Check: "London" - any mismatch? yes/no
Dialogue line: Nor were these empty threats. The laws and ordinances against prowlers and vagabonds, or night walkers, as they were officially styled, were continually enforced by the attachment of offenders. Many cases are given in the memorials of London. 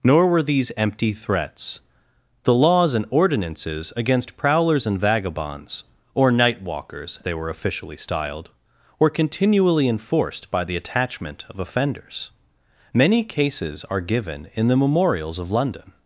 no